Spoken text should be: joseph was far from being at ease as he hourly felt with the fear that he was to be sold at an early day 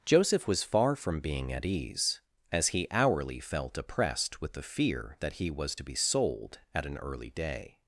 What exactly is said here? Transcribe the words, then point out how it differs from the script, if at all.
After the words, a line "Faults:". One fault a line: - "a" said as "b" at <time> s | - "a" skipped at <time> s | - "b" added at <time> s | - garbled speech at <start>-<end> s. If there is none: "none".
joseph was far from being at ease as he hourly felt oppressed with the fear that he was to be sold at an early day
Faults:
- "oppressed" added at 3.8 s